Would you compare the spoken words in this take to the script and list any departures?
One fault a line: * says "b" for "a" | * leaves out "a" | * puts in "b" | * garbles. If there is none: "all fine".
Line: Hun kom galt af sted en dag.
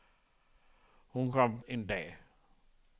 * leaves out "galt af sted"